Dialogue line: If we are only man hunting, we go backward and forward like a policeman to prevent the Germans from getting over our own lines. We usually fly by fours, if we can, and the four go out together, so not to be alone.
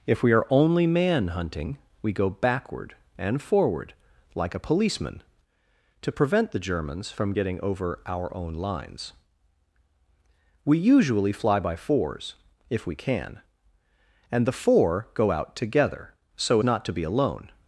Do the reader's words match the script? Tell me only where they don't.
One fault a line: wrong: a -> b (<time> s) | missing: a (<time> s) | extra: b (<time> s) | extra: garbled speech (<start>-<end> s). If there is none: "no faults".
no faults